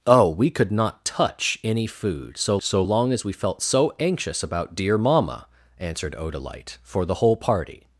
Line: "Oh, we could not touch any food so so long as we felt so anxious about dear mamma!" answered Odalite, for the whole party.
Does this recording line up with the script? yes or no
yes